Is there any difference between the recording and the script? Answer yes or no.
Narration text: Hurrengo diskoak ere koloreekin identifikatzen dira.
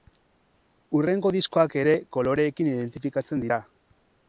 no